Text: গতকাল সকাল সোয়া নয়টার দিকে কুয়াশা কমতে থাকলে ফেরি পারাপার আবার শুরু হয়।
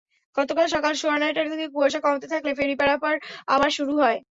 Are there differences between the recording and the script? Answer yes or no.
no